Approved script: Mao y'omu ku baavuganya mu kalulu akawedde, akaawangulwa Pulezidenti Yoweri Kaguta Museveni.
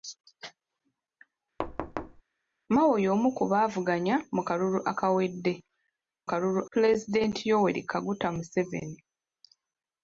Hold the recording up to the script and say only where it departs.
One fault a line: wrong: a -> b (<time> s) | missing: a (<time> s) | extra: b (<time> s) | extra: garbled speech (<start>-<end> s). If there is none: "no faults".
wrong: akaawangulwa -> kalulu (6.3 s)